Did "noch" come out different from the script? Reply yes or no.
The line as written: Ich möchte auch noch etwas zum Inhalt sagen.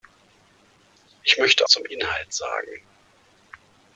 yes